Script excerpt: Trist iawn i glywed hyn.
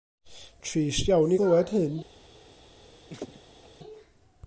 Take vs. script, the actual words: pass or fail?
pass